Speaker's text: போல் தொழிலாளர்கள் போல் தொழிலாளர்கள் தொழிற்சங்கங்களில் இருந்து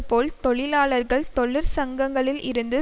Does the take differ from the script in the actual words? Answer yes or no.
yes